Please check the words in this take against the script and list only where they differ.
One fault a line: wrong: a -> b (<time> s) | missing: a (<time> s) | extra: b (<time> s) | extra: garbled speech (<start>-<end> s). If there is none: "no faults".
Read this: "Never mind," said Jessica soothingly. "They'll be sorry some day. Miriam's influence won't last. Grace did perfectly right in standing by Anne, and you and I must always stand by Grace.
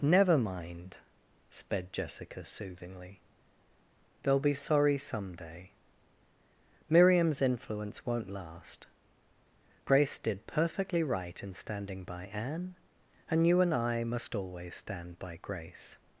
wrong: said -> sped (1.5 s)